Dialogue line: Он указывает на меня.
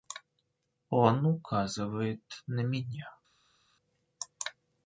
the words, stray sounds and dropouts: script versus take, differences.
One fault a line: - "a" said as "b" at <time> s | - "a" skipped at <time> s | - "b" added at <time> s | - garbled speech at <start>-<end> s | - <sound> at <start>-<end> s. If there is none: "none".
none